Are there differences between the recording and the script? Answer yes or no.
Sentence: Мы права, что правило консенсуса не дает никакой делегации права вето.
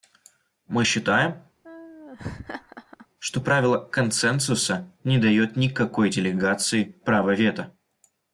yes